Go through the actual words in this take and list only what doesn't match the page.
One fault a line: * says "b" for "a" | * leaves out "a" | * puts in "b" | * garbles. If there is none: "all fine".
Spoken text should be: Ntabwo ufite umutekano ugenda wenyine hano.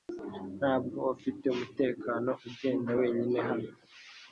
all fine